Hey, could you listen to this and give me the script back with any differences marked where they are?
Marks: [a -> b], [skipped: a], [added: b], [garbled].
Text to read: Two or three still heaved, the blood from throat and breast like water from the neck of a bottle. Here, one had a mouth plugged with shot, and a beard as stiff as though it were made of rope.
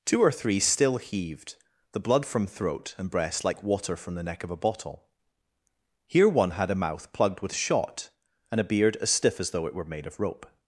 Two or three still heaved, the blood from throat and breast like water from the neck of a bottle. Here, one had a mouth plugged with shot, and a beard as stiff as though it were made of rope.